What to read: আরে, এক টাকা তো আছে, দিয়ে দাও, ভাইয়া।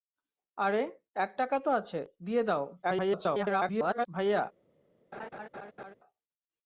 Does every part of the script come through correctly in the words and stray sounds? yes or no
no